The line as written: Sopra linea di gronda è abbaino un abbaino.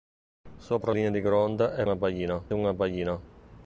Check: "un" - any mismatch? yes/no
no